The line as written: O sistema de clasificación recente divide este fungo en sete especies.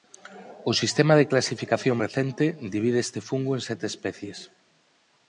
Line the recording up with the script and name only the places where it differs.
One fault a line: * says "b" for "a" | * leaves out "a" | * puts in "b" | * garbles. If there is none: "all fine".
all fine